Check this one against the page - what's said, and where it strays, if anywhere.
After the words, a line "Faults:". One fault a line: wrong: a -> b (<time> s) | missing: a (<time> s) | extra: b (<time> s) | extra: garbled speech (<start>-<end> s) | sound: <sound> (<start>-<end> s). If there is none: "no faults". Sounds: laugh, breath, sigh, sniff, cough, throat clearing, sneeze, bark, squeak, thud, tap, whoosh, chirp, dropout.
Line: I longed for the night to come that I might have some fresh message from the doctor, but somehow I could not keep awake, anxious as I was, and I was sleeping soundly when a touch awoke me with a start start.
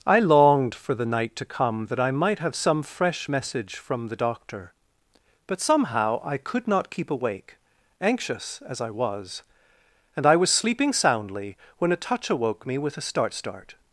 I longed for the night to come that I might have some fresh message from the doctor, but somehow I could not keep awake, anxious as I was, and I was sleeping soundly when a touch awoke me with a start start.
Faults:
no faults